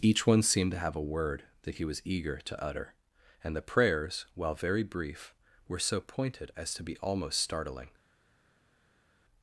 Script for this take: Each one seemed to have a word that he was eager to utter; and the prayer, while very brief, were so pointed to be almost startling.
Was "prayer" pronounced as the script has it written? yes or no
no